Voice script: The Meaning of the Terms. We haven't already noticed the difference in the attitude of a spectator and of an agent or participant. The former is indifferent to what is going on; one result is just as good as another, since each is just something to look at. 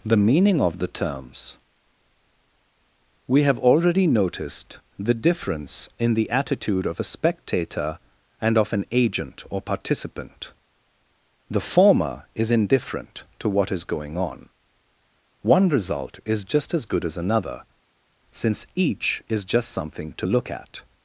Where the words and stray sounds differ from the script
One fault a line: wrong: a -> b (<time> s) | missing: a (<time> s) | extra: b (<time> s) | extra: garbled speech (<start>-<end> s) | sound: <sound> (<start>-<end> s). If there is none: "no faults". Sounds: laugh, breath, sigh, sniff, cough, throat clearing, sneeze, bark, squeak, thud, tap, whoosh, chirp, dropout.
wrong: haven't -> have (3.4 s)